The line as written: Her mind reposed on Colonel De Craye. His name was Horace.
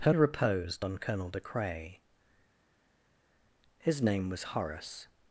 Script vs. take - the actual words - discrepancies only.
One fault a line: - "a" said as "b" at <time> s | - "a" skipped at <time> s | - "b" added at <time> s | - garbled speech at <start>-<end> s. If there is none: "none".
- "mind" skipped at 0.1 s